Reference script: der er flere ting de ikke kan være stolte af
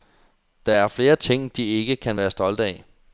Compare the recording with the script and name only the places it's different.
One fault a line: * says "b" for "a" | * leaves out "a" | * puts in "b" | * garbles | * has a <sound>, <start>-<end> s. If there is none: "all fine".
all fine